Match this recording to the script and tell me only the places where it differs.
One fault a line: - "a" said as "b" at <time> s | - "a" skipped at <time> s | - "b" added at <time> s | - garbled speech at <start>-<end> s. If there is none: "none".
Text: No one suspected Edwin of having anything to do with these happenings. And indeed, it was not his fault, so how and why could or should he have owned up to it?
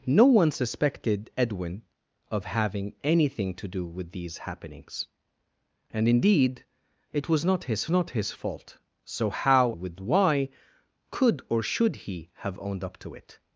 - "not his" added at 7.9 s
- "and" said as "with" at 9.7 s